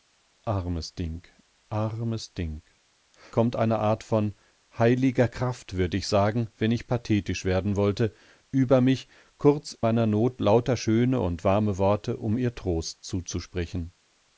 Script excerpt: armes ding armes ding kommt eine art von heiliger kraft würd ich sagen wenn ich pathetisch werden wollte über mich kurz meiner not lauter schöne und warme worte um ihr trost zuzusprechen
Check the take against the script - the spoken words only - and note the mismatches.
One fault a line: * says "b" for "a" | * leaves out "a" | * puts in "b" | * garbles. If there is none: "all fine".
all fine